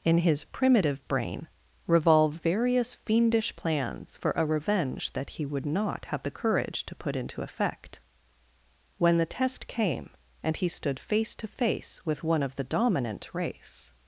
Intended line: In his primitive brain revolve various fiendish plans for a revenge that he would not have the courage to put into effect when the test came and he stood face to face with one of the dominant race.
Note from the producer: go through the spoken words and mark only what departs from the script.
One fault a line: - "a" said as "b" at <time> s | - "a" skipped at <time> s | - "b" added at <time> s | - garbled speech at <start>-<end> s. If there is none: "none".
none